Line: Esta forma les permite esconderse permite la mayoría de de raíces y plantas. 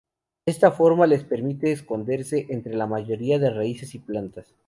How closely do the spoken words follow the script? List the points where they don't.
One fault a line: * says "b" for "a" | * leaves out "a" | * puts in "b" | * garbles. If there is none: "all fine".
* says "entre" for "permite"
* leaves out "de"